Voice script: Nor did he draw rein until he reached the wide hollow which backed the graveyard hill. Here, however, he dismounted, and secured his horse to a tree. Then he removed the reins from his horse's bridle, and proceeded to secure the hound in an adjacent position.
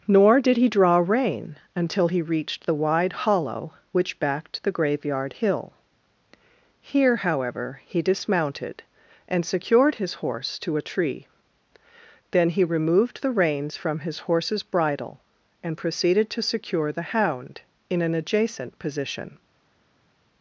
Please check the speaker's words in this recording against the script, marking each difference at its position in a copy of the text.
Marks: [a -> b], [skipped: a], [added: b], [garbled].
Nor did he draw rein until he reached the wide hollow which backed the graveyard hill. Here, however, he dismounted, and secured his horse to a tree. Then he removed the reins from his horse's bridle, and proceeded to secure the hound in an adjacent position.